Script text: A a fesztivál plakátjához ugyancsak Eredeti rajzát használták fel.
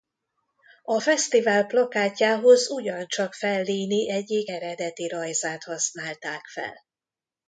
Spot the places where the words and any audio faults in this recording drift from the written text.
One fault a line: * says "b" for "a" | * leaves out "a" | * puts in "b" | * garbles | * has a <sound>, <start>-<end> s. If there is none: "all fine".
* leaves out "a"
* puts in "Fellini egyik"